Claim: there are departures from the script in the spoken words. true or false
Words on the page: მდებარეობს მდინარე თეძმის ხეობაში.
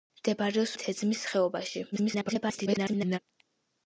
true